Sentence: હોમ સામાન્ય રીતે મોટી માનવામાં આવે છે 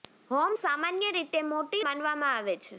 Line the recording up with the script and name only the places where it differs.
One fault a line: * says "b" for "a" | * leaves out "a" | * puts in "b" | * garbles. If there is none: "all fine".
all fine